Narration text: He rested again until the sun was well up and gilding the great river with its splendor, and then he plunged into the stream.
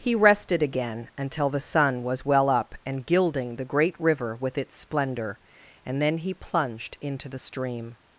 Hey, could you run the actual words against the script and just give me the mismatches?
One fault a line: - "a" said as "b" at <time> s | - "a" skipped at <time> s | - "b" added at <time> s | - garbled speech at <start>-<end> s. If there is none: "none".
none